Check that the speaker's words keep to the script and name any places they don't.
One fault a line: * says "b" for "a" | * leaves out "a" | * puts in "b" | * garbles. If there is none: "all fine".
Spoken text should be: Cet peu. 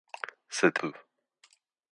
all fine